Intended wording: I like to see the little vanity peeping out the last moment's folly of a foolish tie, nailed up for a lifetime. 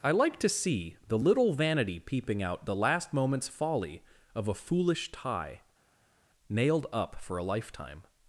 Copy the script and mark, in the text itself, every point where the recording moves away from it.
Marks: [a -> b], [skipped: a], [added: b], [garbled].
I like to see the little vanity peeping out the last moment's folly of a foolish tie, nailed up for a lifetime.